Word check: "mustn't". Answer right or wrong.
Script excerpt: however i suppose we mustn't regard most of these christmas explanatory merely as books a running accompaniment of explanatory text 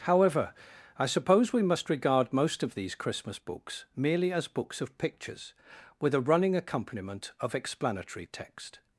wrong